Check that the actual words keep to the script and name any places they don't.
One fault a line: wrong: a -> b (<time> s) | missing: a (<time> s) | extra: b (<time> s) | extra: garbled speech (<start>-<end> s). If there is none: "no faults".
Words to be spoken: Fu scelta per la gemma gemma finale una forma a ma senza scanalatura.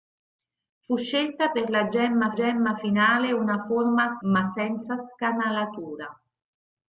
no faults